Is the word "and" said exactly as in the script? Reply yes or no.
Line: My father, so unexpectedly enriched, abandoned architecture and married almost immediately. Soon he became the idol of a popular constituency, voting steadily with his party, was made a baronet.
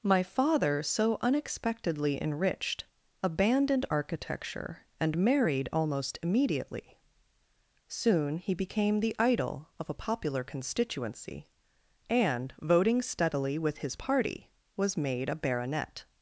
yes